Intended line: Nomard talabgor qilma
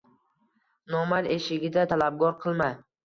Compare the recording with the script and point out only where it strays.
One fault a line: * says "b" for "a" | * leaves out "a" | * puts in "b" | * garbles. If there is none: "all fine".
* puts in "eshigida"